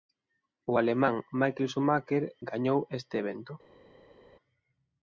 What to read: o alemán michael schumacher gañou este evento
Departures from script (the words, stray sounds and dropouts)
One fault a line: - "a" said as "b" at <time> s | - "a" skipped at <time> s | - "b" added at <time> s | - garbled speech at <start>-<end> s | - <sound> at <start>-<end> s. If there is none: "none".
none